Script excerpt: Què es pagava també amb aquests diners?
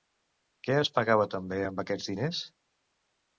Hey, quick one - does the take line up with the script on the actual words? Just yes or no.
yes